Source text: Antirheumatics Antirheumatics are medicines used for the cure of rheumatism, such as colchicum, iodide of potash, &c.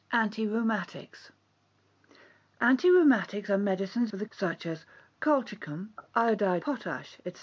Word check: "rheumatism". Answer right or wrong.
wrong